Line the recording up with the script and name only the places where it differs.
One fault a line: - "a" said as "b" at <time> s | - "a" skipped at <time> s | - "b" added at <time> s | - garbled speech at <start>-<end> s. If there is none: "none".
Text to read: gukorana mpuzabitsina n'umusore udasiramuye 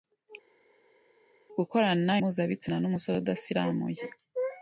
none